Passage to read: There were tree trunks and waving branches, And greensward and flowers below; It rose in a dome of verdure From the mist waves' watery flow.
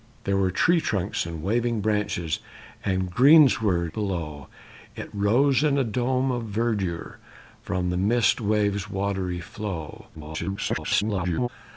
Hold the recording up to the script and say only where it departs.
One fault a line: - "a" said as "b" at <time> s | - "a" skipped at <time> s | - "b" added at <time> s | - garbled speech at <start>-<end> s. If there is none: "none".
- "and flowers" skipped at 3.9 s
- garbled speech at 10.1-11.5 s